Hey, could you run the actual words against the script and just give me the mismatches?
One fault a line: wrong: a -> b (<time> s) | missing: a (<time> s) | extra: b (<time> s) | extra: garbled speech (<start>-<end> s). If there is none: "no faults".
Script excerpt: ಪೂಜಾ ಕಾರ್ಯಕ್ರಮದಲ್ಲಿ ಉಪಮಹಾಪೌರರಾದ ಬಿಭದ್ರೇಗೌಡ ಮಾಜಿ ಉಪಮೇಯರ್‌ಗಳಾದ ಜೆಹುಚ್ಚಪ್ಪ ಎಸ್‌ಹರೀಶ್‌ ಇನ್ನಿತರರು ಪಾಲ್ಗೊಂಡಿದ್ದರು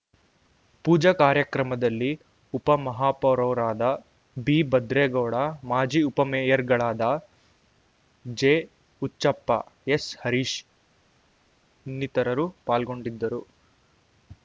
no faults